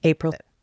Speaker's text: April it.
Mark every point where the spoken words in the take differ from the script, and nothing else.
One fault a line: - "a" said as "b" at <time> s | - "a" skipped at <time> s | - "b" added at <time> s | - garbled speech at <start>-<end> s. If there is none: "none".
none